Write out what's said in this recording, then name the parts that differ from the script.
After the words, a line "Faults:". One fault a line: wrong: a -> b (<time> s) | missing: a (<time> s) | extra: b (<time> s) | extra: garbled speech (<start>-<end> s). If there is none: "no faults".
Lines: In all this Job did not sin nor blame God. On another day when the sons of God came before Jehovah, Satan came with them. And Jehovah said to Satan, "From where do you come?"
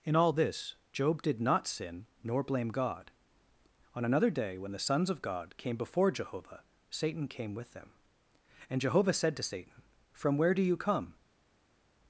In all this Job did not sin nor blame God. On another day when the sons of God came before Jehovah, Satan came with them. And Jehovah said to Satan, "From where do you come?"
Faults:
no faults